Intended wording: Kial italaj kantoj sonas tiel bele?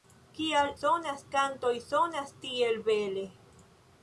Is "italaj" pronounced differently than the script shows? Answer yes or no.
yes